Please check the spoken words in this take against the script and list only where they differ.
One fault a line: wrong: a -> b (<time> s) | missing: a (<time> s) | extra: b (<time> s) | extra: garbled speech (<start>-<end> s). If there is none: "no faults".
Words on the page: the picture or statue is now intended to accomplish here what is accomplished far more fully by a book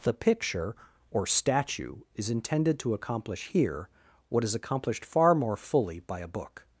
missing: now (2.3 s)